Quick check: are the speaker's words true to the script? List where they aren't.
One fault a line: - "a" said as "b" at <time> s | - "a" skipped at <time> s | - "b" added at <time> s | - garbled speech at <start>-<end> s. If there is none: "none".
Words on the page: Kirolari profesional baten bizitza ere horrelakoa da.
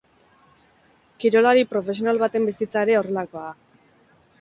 none